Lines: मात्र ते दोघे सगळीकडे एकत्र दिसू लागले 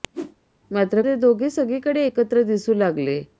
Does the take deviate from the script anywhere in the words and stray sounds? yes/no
yes